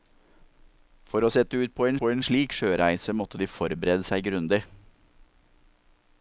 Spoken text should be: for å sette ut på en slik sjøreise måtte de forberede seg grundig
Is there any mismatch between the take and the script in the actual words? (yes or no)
yes